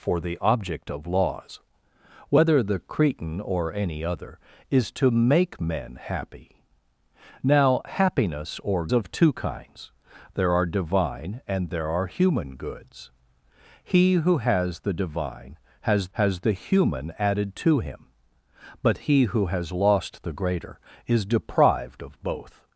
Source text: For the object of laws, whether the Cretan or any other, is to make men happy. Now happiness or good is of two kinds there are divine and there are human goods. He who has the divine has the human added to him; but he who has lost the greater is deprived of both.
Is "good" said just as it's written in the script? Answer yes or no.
no